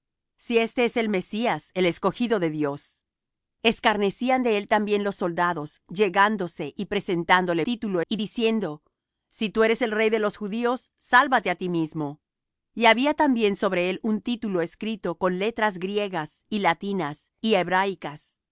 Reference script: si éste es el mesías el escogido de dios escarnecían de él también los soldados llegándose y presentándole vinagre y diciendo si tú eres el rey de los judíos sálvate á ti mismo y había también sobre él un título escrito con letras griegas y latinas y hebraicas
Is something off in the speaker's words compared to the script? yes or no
yes